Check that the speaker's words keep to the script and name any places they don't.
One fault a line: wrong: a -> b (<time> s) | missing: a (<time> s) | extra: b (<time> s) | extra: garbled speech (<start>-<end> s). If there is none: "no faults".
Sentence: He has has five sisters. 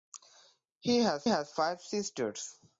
no faults